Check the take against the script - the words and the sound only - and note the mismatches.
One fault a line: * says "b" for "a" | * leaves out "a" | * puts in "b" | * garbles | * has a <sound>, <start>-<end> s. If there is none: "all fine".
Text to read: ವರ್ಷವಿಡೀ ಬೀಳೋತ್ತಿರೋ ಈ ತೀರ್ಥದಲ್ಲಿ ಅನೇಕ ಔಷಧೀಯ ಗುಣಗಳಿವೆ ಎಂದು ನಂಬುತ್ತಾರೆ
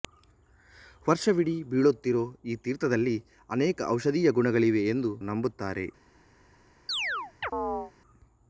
* has a chirp, 6.9-7.9 s